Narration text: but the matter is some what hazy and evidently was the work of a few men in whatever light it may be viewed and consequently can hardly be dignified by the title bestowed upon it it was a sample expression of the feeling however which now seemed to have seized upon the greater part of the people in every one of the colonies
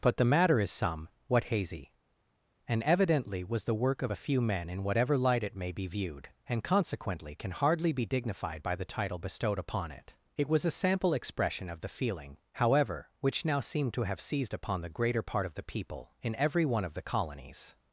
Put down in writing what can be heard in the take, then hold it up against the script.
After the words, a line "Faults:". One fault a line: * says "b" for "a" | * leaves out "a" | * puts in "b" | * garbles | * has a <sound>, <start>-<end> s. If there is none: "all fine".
but the matter is some what hazy and evidently was the work of a few men in whatever light it may be viewed and consequently can hardly be dignified by the title bestowed upon it it was a sample expression of the feeling however which now seemed to have seized upon the greater part of the people in every one of the colonies
Faults:
all fine